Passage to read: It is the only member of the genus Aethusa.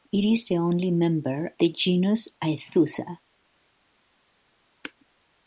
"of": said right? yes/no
no